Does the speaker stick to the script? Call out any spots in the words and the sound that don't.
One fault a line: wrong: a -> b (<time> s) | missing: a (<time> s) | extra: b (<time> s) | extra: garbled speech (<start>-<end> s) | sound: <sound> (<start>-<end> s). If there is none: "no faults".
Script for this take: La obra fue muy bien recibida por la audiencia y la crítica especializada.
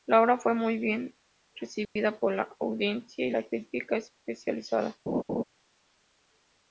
sound: dropout (1.8-2.0 s)
sound: laugh (5.1-5.4 s)